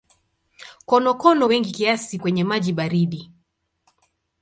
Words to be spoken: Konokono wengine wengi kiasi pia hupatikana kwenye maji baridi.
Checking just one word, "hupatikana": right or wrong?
wrong